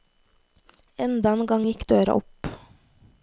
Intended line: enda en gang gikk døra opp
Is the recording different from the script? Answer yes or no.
no